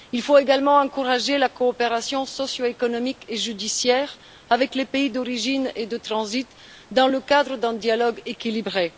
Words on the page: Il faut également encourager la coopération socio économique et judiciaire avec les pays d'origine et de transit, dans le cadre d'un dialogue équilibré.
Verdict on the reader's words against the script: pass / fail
pass